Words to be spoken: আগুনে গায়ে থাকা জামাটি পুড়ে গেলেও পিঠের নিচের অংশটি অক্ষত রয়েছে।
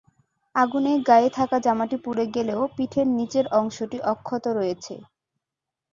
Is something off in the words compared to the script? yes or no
no